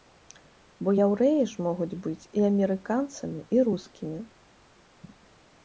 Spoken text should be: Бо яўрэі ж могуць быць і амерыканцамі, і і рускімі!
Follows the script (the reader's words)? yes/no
no